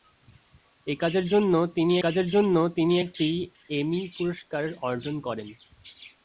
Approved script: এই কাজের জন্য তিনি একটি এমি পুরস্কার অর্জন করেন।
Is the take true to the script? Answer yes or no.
no